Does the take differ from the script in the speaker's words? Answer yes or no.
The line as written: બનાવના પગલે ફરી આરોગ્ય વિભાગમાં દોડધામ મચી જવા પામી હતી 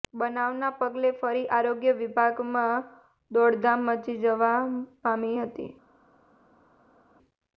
no